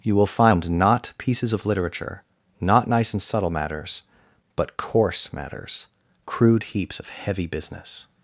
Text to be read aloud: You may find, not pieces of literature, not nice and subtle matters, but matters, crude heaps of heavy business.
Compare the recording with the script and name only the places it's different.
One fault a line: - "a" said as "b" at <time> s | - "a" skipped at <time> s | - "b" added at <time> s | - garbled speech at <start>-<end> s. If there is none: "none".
- "may" said as "will" at 0.1 s
- "coarse" added at 4.8 s